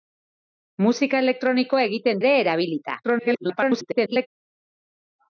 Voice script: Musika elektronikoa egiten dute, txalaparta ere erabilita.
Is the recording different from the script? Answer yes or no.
yes